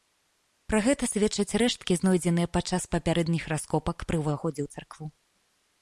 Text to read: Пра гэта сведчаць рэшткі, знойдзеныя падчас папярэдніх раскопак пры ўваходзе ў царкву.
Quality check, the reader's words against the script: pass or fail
pass